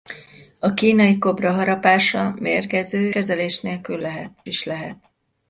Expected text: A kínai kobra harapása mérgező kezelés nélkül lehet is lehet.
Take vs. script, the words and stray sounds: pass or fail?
pass